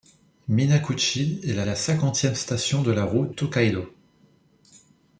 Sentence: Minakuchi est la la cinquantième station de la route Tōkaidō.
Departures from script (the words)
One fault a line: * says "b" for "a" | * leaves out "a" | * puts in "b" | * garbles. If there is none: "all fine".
all fine